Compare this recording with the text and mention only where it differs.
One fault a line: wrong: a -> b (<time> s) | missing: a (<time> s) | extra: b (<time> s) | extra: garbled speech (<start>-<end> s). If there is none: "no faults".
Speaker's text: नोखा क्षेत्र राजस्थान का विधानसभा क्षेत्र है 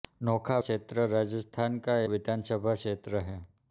no faults